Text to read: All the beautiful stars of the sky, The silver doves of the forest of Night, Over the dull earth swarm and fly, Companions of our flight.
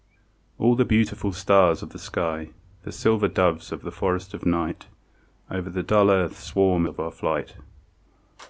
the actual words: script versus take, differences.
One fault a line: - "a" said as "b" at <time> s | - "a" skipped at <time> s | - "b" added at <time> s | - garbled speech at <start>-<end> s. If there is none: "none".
- "and fly Companions" skipped at 6.9 s